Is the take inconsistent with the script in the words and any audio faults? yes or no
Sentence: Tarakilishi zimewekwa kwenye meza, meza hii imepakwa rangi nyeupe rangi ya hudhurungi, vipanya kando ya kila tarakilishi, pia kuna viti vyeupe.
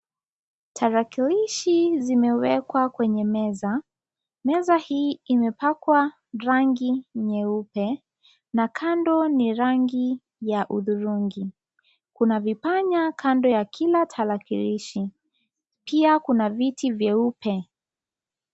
yes